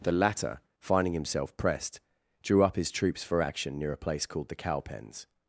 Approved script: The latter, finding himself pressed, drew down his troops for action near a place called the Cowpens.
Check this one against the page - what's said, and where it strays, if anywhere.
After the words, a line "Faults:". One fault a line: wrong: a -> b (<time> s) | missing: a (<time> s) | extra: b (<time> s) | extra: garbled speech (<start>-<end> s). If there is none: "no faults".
The latter, finding himself pressed, drew up his troops for action near a place called the Cowpens.
Faults:
wrong: down -> up (2.6 s)